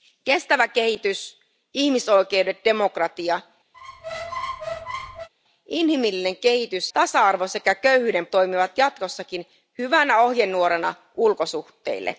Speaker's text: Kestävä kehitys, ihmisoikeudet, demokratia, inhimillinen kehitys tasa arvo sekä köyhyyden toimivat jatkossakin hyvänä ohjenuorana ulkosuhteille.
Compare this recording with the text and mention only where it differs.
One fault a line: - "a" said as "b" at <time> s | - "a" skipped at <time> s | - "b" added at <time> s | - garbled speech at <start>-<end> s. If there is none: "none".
none